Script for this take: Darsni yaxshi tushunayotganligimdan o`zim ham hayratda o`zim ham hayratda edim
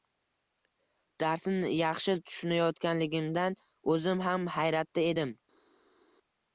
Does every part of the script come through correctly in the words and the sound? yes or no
no